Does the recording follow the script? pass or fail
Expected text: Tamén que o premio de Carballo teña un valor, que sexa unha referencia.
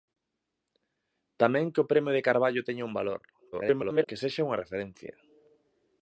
fail